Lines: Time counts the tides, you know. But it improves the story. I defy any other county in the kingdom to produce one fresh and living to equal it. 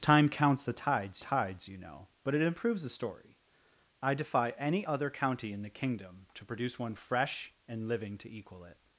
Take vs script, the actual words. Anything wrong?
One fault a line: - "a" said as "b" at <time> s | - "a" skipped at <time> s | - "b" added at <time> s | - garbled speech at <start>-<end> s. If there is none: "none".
- "tides" added at 1.2 s